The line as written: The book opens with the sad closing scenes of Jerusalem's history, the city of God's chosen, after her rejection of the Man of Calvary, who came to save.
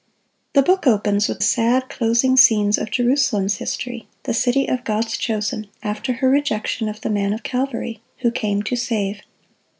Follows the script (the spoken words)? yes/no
no